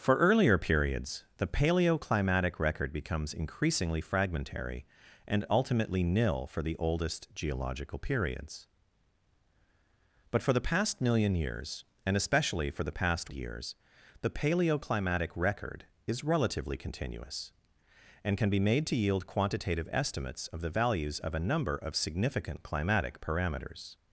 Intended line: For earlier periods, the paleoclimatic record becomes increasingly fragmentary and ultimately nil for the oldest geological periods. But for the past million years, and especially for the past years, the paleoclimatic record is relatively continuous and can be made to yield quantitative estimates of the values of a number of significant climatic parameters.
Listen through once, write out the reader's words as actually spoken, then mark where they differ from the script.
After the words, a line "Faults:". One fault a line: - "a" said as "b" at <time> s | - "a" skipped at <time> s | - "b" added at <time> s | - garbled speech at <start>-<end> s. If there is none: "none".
For earlier periods, the paleoclimatic record becomes increasingly fragmentary and ultimately nil for the oldest geological periods. But for the past million years, and especially for the past years, the paleoclimatic record is relatively continuous and can be made to yield quantitative estimates of the values of a number of significant climatic parameters.
Faults:
none